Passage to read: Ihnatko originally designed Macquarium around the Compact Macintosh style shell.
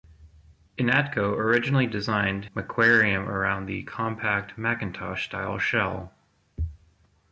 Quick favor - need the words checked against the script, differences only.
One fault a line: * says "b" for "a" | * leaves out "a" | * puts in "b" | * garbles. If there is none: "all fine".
all fine